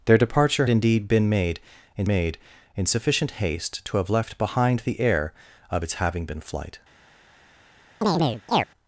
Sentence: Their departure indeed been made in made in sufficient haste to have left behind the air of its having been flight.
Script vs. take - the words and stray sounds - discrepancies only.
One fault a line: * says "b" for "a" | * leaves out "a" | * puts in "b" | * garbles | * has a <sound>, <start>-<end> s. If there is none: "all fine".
* has a chirp, 8.0-8.7 s